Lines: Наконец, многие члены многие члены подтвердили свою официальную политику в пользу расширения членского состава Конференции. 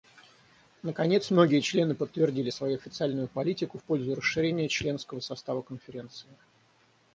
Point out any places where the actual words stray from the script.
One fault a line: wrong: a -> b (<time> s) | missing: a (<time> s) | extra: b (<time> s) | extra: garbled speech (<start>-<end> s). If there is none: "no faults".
missing: многие члены (1.9 s)